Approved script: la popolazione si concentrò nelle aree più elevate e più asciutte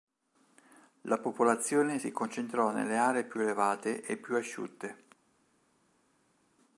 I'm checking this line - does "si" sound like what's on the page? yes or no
yes